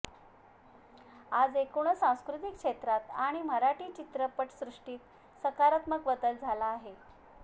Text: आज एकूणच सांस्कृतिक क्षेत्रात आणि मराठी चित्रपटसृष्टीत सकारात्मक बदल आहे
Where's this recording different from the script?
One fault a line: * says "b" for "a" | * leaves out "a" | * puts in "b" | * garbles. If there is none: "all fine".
* puts in "झाला"